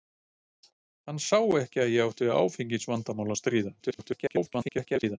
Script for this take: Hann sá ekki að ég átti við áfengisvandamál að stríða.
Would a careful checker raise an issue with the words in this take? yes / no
yes